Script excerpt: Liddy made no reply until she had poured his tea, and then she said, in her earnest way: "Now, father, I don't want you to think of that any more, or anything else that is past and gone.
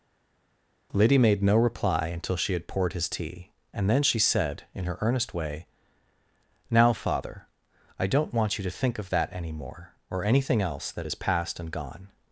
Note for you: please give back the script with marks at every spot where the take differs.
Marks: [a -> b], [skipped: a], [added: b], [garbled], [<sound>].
Liddy made no reply until she had poured his tea, and then she said, in her earnest way: "Now, father, I don't want you to think of that any more, or anything else that is past and gone.